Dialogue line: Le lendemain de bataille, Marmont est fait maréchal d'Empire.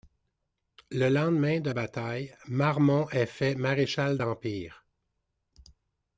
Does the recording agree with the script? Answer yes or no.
yes